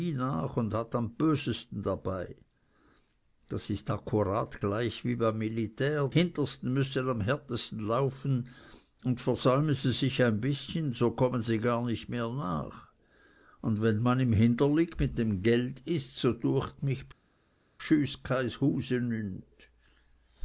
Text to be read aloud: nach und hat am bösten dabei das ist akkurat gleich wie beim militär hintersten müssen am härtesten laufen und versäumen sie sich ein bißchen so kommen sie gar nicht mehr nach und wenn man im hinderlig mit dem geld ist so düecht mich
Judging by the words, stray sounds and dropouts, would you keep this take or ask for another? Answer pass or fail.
pass